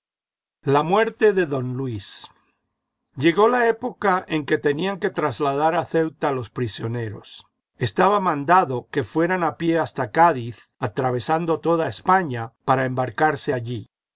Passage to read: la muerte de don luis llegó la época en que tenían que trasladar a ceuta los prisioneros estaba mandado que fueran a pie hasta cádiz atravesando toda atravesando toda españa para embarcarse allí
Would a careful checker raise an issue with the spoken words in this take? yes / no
yes